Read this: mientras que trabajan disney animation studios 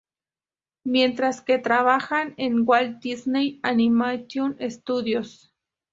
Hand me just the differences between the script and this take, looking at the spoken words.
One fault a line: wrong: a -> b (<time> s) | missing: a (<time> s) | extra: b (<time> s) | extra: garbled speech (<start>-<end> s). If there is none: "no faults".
extra: en walt (2.4 s)